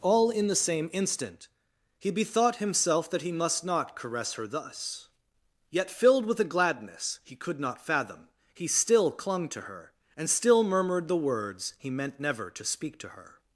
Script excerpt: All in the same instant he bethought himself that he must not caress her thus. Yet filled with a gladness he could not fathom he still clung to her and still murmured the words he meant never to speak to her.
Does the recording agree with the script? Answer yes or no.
yes